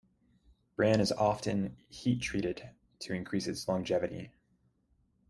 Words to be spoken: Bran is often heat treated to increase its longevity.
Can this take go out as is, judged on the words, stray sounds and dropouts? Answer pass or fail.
pass